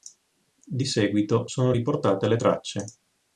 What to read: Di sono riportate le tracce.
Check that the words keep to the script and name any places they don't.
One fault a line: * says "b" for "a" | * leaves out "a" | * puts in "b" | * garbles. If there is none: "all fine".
* puts in "seguito"